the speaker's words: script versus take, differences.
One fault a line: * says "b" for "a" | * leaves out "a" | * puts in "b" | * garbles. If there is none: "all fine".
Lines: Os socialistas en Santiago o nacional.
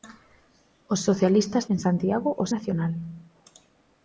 all fine